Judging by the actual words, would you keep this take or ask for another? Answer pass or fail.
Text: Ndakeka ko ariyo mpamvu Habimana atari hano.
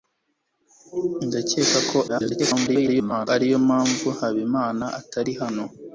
fail